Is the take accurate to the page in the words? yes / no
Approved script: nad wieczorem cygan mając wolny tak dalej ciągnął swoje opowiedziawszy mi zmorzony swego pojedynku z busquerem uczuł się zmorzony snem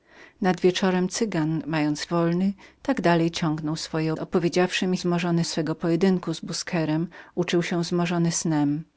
yes